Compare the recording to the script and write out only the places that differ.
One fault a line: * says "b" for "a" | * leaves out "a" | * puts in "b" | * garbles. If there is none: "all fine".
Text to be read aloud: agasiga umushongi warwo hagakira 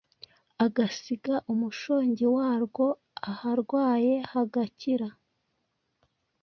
* puts in "aharwaye"